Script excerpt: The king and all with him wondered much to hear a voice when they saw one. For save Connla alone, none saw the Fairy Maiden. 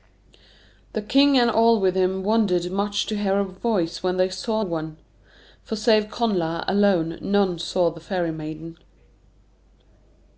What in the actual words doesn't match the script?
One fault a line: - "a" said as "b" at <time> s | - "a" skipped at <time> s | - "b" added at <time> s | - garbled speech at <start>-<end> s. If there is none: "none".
none